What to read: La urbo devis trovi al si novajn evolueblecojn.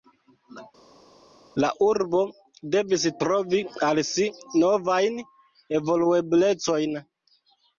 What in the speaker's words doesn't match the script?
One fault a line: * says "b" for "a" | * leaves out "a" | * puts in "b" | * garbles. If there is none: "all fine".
all fine